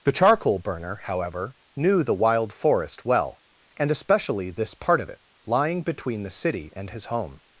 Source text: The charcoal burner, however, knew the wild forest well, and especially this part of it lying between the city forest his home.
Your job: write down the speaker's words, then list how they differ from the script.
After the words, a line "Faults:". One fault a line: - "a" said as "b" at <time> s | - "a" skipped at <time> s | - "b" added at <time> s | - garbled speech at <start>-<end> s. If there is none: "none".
The charcoal burner, however, knew the wild forest well, and especially this part of it lying between the city and his home.
Faults:
- "forest" said as "and" at 6.8 s